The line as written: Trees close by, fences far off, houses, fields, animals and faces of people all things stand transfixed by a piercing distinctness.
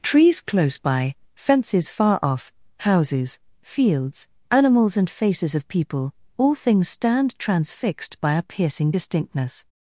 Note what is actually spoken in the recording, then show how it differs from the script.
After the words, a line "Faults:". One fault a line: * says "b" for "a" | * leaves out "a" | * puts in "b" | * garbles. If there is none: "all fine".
Trees close by, fences far off, houses, fields, animals and faces of people all things stand transfixed by a piercing distinctness.
Faults:
all fine